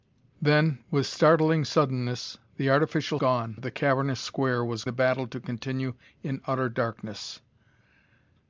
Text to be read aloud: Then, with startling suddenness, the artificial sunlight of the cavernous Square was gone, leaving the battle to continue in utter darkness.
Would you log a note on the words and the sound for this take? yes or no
yes